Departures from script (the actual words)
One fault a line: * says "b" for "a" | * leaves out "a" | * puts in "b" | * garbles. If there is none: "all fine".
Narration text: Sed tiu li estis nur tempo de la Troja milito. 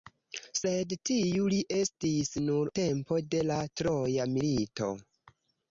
all fine